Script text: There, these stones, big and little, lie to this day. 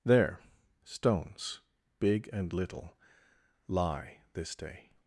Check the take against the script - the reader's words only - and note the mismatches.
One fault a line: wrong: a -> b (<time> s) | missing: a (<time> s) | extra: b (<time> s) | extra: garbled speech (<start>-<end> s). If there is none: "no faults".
missing: these (0.4 s)
missing: to (4.2 s)